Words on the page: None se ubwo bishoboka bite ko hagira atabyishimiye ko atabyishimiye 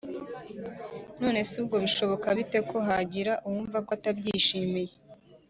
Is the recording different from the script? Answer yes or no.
yes